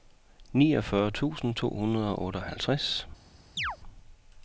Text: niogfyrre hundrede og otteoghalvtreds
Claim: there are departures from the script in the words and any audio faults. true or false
true